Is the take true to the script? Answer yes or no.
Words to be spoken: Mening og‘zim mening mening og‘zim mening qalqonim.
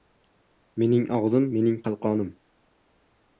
no